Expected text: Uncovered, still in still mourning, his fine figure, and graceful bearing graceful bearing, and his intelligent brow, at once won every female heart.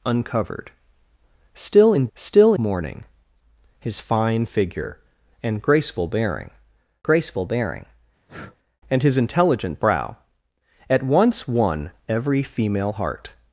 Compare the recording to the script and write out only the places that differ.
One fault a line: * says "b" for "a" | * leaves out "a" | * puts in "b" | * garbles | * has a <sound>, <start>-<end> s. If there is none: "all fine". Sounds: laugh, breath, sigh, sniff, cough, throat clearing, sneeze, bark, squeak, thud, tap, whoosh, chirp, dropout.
* has a breath, 8.3-8.6 s